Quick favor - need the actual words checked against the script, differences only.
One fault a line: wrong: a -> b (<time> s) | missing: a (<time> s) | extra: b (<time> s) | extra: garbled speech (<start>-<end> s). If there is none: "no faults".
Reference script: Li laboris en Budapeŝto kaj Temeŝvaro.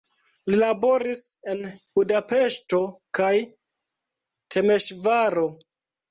no faults